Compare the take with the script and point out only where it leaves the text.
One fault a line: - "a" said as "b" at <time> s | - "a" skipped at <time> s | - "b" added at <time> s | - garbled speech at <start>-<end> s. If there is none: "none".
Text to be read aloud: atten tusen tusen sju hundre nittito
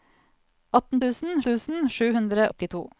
none